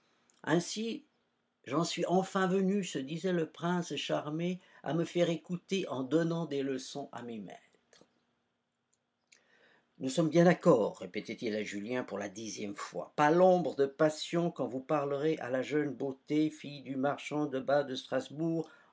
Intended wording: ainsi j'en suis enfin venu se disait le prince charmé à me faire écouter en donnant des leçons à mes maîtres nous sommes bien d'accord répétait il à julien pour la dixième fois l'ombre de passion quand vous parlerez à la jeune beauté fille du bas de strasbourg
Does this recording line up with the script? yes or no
no